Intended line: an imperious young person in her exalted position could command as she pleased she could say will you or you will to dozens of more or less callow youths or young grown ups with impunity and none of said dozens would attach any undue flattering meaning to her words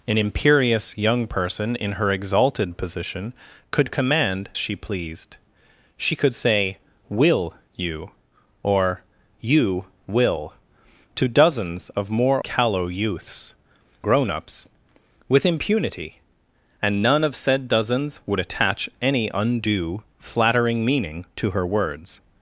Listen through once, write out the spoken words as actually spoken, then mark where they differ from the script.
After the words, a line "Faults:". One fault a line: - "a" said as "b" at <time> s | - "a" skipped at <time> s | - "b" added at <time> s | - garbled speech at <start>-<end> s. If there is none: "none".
an imperious young person in her exalted position could command she pleased she could say will you or you will to dozens of more callow youths grown ups with impunity and none of said dozens would attach any undue flattering meaning to her words
Faults:
- "as" skipped at 4.5 s
- "or less" skipped at 12.4 s
- "or young" skipped at 13.6 s